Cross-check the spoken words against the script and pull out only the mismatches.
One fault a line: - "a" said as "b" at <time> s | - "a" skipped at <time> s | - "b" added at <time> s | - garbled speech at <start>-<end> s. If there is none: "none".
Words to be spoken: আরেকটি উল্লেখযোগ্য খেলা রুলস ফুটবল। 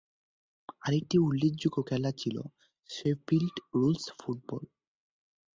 - "ছিল শেফিল্ড" added at 2.1 s